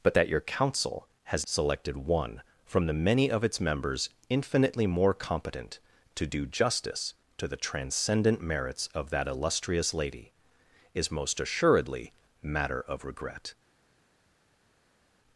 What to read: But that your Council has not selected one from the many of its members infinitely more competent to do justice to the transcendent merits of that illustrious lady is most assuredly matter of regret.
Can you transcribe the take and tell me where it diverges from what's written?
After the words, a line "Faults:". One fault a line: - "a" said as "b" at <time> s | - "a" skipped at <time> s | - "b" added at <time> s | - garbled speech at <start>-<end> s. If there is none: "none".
But that your Council has selected one from the many of its members infinitely more competent to do justice to the transcendent merits of that illustrious lady is most assuredly matter of regret.
Faults:
- "not" skipped at 1.4 s